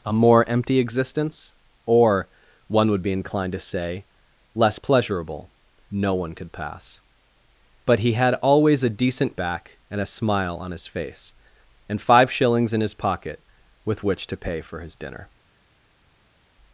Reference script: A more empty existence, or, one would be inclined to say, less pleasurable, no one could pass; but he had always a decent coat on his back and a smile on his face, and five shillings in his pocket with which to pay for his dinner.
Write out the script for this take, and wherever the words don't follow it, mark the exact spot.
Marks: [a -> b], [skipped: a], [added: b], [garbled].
A more empty existence, or, one would be inclined to say, less pleasurable, no one could pass; but he had always a decent [skipped: coat on his] back and a smile on his face, and five shillings in his pocket with which to pay for his dinner.